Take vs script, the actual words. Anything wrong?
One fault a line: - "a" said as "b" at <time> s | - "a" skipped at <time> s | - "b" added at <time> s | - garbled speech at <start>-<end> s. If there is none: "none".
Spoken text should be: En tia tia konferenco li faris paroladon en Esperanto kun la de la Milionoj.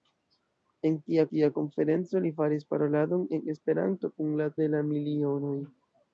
none